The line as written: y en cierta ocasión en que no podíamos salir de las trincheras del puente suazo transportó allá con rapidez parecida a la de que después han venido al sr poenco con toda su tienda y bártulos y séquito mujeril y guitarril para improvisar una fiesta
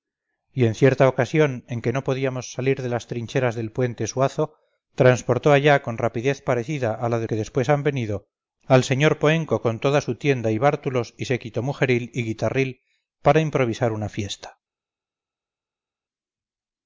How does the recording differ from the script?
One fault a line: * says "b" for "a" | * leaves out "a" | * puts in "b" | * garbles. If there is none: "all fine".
all fine